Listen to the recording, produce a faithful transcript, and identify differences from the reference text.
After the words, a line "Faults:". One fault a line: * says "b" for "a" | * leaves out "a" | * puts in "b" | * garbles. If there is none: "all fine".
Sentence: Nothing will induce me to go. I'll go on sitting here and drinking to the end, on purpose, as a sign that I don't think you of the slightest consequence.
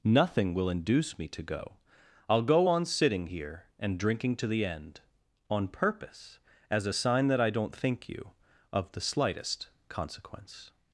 Nothing will induce me to go. I'll go on sitting here and drinking to the end, on purpose, as a sign that I don't think you of the slightest consequence.
Faults:
all fine